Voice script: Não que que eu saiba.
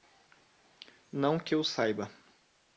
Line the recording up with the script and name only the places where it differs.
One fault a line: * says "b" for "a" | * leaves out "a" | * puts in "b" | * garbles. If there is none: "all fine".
* leaves out "que"